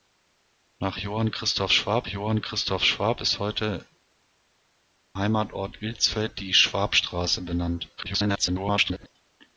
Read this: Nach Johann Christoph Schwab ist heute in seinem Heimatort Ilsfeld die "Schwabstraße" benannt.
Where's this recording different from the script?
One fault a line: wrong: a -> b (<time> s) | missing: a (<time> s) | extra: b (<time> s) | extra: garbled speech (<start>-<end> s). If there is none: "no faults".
extra: Johann Christoph Schwab (2.1 s)
missing: in seinem (3.9 s)
extra: garbled speech (8.0-9.1 s)